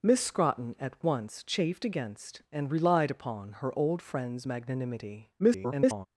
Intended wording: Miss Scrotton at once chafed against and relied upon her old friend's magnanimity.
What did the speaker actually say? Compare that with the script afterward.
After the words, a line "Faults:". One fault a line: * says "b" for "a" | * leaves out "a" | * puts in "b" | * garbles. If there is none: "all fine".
Miss Scrotton at once chafed against and relied upon her old friend's magnanimity. [garbled]
Faults:
* garbles